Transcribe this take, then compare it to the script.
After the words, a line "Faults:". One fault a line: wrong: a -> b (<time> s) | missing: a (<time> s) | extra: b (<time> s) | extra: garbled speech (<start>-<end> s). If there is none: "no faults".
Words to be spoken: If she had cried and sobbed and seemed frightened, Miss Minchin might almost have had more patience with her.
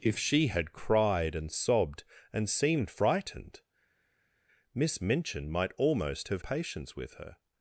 If she had cried and sobbed and seemed frightened, Miss Minchin might almost have patience with her.
Faults:
missing: had more (6.4 s)